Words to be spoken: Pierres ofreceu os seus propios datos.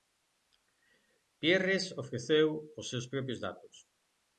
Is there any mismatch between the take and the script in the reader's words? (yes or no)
no